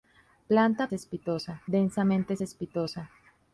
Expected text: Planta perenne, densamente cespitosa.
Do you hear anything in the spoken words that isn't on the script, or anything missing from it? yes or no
yes